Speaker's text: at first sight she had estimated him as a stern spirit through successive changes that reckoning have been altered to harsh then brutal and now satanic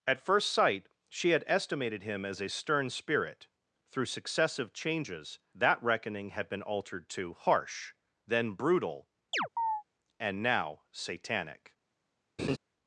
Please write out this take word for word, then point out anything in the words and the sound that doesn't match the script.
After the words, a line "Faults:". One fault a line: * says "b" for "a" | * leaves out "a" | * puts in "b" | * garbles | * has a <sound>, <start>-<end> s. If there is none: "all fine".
at first sight she had estimated him as a stern spirit through successive changes that reckoning had been altered to harsh then brutal and now satanic
Faults:
* says "had" for "have"
* has a chirp, 9.3-9.8 s
* has a laugh, 12.4-12.6 s